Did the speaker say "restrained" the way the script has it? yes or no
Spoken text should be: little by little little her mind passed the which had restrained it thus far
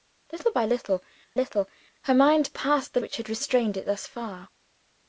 yes